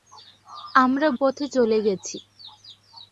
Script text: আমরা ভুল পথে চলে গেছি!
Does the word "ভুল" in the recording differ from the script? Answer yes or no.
yes